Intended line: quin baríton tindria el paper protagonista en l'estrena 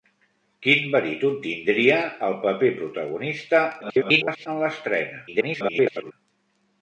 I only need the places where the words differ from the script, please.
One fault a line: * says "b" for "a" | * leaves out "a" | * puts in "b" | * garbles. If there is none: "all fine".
* garbles
* garbles